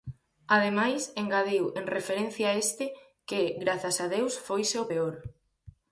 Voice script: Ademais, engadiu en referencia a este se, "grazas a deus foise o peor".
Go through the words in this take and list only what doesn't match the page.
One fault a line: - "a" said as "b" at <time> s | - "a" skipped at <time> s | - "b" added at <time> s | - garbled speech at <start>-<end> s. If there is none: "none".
- "se" said as "que" at 3.3 s